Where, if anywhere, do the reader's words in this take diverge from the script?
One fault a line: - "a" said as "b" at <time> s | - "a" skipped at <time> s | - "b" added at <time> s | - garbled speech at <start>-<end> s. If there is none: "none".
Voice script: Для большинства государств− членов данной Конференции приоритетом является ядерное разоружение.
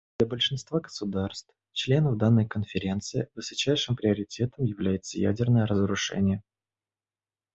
- "высочайшим" added at 3.4 s